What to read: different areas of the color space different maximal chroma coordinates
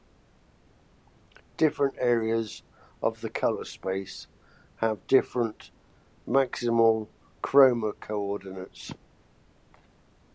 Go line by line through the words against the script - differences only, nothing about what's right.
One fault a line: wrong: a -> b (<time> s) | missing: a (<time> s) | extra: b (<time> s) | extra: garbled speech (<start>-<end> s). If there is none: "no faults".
extra: have (4.8 s)